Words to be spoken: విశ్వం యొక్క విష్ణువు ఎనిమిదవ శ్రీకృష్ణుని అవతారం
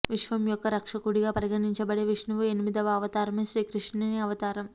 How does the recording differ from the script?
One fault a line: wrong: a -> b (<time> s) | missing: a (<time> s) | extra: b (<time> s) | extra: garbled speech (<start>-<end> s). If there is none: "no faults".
extra: రక్షకుడిగా పరిగణించబడే (0.7 s)
extra: అవతారమే (2.9 s)